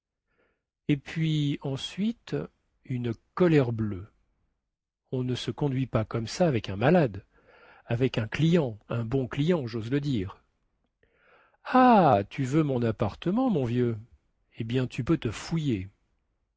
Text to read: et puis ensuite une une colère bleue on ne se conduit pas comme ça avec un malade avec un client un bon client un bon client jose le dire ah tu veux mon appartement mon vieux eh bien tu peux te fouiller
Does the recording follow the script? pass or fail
fail